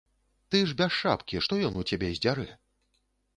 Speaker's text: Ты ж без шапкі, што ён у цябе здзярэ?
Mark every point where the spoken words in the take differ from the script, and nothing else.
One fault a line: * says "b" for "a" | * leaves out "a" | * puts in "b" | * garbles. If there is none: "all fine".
all fine